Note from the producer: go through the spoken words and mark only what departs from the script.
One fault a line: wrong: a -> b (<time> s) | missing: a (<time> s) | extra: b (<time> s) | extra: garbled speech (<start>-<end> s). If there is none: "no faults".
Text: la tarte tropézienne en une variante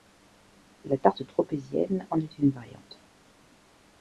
extra: est (2.2 s)